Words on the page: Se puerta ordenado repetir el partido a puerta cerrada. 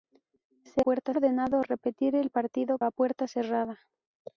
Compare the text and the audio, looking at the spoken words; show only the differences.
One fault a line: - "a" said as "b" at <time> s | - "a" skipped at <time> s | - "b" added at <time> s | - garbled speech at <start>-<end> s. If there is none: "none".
none